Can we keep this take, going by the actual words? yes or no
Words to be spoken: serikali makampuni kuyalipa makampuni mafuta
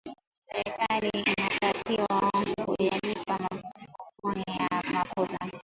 no